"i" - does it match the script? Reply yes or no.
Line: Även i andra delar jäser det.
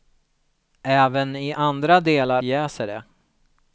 yes